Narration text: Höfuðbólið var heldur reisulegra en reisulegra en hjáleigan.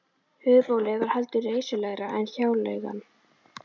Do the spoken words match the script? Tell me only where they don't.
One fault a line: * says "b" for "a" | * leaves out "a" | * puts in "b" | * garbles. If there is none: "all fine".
* leaves out "reisulegra en"